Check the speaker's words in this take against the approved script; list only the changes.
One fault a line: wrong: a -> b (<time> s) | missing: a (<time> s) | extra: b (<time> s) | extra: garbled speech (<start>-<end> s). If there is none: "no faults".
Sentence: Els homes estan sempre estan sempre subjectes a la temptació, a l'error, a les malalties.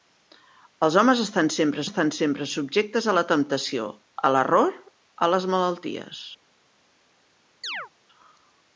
no faults